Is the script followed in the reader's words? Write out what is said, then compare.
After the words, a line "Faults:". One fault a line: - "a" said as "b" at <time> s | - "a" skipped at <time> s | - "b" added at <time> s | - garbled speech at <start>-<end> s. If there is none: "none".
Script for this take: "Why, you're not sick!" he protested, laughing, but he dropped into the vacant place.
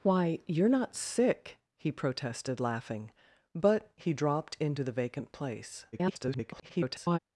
"Why, you're not sick!" he protested, laughing, but he dropped into the vacant place. [garbled]
Faults:
- garbled speech at 5.9-7.2 s